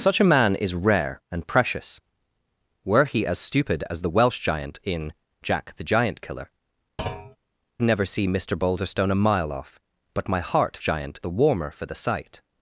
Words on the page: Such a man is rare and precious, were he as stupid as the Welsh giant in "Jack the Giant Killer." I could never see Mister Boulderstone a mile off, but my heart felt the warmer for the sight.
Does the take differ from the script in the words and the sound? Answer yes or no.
yes